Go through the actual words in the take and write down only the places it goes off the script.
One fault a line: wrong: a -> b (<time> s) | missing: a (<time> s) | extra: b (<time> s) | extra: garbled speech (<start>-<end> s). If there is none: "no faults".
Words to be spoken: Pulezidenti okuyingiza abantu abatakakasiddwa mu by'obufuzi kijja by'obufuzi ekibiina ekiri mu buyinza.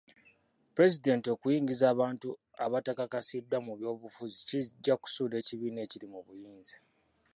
wrong: by'obufuzi -> kusuula (5.0 s)